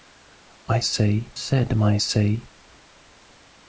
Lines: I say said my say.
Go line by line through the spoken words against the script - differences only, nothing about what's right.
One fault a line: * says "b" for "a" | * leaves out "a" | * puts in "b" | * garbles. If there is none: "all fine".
all fine